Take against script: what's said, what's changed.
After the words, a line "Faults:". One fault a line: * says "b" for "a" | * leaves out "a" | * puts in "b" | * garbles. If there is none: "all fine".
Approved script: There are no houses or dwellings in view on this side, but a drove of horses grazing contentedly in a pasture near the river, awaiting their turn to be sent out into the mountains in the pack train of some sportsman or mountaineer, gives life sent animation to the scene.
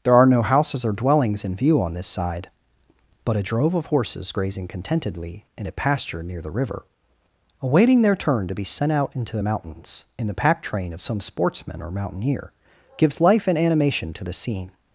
There are no houses or dwellings in view on this side, but a drove of horses grazing contentedly in a pasture near the river, awaiting their turn to be sent out into the mountains in the pack train of some sportsman or mountaineer, gives life and animation to the scene.
Faults:
* says "and" for "sent"